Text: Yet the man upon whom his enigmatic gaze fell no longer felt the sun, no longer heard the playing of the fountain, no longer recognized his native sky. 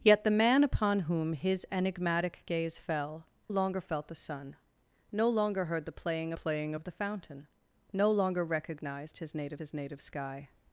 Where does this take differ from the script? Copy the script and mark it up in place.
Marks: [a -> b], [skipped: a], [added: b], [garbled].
Yet the man upon whom his enigmatic gaze fell [skipped: no] longer felt the sun, no longer heard the playing [added: playing] of the fountain, no longer recognized his native [added: his native] sky.